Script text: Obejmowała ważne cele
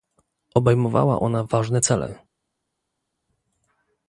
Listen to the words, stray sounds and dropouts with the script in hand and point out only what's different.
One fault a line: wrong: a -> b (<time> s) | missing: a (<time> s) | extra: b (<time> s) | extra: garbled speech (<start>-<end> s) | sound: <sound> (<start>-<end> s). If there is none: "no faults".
extra: ona (1.2 s)